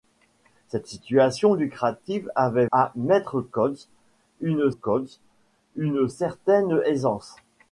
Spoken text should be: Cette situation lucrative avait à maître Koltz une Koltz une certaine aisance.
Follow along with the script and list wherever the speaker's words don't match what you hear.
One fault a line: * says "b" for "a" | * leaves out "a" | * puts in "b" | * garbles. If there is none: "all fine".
all fine